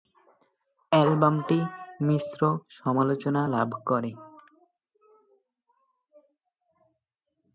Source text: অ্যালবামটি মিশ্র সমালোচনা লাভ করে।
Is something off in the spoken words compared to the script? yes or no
no